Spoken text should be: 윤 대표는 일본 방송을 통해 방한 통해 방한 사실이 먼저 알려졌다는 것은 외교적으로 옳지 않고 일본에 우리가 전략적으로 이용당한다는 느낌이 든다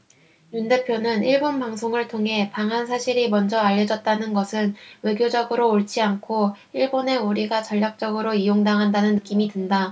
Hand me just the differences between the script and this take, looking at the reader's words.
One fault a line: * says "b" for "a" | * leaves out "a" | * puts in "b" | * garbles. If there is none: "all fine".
* leaves out "통해 방한"